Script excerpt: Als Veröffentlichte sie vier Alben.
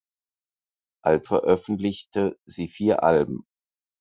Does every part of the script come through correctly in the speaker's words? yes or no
yes